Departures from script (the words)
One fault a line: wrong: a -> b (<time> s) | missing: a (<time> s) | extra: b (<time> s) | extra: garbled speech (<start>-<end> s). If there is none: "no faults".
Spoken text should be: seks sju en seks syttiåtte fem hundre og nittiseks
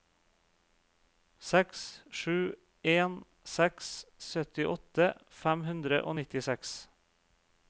no faults